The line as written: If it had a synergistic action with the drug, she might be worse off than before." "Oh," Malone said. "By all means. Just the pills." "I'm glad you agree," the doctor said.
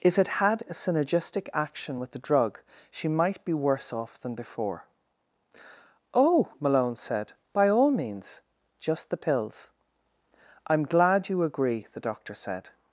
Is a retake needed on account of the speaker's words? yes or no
no